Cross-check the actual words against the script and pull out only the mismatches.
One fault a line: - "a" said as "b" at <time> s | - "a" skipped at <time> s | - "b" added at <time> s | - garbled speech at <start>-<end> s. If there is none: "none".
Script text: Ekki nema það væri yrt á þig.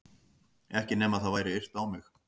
- "þig" said as "mig" at 1.9 s